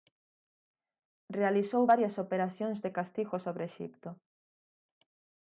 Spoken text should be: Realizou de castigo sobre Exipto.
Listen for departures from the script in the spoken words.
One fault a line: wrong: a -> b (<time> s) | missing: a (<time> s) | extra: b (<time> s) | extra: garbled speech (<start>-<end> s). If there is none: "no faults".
extra: varias operacións (1.9 s)